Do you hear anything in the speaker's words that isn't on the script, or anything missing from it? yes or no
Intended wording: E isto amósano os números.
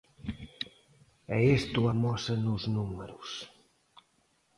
no